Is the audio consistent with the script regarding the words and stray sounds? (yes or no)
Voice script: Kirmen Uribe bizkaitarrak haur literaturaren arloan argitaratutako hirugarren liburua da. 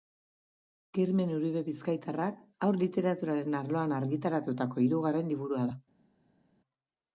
yes